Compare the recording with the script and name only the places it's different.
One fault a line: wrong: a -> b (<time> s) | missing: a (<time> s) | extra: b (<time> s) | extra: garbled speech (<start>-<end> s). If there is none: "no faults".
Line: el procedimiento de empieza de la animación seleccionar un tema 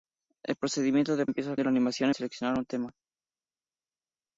no faults